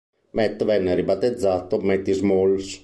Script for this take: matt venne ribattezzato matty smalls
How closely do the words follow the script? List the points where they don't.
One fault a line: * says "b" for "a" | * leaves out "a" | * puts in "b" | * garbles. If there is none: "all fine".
all fine